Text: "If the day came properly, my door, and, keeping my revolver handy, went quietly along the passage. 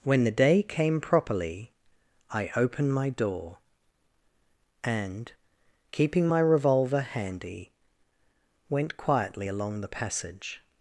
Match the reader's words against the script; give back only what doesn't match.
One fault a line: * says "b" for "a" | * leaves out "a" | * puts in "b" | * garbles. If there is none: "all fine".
* says "When" for "If"
* puts in "I opened"